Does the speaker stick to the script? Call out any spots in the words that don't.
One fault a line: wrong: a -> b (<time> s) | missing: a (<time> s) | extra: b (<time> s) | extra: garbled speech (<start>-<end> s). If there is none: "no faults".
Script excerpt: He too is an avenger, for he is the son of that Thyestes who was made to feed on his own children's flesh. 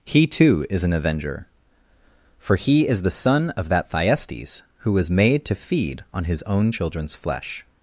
no faults